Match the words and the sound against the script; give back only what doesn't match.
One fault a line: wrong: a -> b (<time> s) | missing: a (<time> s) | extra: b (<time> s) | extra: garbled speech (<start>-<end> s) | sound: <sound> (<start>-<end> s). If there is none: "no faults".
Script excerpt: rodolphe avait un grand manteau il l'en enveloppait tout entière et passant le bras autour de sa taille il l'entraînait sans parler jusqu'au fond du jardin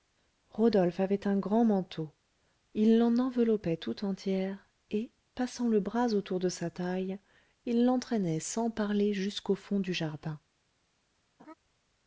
sound: laugh (11.4-11.5 s)